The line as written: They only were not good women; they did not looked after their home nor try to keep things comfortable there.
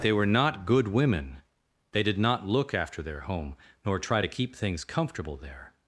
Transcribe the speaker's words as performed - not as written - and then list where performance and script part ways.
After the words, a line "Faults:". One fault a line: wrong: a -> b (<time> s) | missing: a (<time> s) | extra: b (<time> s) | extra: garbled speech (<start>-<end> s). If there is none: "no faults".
They were not good women; they did not look after their home nor try to keep things comfortable there.
Faults:
missing: only (0.1 s)
wrong: looked -> look (2.5 s)